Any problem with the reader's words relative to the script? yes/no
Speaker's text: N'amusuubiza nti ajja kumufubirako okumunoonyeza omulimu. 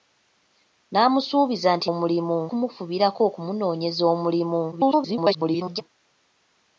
yes